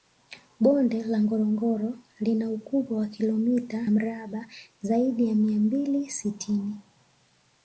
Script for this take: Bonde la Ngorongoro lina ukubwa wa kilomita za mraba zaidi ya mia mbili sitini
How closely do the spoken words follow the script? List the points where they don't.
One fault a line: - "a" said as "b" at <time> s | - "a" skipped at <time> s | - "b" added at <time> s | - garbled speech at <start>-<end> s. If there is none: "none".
- "za" skipped at 3.9 s